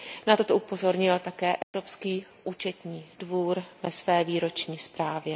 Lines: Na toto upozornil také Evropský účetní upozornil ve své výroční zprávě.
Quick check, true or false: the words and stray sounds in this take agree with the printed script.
false